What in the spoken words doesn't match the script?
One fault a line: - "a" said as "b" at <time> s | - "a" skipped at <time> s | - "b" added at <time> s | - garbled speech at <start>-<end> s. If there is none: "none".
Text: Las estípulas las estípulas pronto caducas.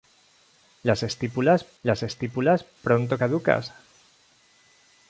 none